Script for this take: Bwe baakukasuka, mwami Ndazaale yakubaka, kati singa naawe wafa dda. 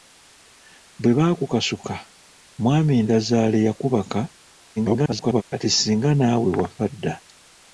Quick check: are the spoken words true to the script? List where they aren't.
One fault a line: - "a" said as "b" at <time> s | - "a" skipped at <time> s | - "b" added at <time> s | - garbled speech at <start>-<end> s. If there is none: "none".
- garbled speech at 4.8-5.4 s